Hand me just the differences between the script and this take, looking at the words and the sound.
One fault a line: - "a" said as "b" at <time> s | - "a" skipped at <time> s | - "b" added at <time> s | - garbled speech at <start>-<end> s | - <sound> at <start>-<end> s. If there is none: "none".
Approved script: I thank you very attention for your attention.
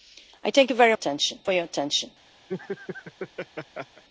- laugh at 2.5-4.0 s